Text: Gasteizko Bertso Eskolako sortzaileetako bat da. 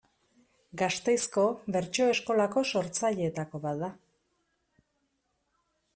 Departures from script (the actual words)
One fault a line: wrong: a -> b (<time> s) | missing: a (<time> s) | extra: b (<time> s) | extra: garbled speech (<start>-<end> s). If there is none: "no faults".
no faults